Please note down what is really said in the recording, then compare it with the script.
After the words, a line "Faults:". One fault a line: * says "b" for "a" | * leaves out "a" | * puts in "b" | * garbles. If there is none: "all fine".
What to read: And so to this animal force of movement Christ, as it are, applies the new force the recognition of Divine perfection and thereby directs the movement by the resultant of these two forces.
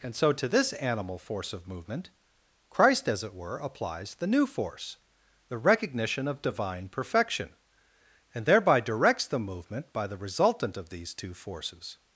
And so to this animal force of movement Christ, as it were, applies the new force the recognition of Divine perfection and thereby directs the movement by the resultant of these two forces.
Faults:
* says "were" for "are"